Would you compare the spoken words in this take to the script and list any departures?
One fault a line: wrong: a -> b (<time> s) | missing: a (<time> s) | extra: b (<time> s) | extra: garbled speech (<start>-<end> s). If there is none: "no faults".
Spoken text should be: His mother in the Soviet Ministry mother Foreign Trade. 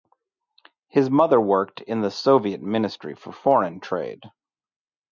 extra: worked (1.4 s)
wrong: mother -> for (3.1 s)